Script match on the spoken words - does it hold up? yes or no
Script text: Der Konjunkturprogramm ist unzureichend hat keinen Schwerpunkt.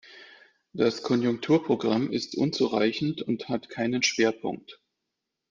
no